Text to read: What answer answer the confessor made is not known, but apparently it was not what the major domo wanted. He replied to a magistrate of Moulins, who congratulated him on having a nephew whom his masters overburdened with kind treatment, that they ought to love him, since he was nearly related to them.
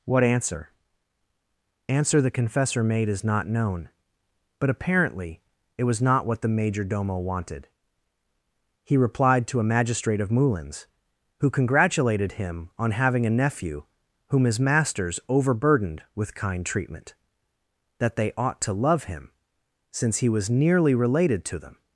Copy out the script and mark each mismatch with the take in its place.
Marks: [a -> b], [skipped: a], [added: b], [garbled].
What answer answer the confessor made is not known, but apparently it was not what the major domo wanted. He replied to a magistrate of Moulins, who congratulated him on having a nephew whom his masters overburdened with kind treatment, that they ought to love him, since he was nearly related to them.